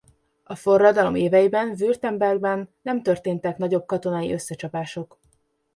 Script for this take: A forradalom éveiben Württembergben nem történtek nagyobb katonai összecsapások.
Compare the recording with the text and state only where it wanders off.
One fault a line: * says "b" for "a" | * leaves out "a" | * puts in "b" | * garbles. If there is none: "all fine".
all fine